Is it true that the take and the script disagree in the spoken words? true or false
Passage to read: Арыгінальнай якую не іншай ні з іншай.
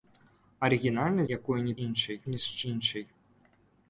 false